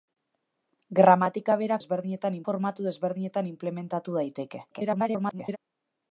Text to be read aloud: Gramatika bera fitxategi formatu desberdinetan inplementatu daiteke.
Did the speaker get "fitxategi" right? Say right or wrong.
wrong